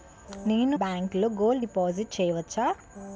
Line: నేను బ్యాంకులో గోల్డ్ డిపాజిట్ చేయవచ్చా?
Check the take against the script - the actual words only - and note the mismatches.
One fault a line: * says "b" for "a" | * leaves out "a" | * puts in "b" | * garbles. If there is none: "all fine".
all fine